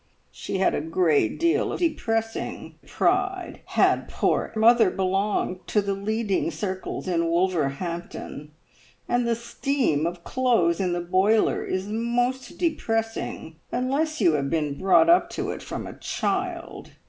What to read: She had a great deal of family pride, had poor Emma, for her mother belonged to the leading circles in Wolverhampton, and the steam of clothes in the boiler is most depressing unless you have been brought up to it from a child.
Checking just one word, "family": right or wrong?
wrong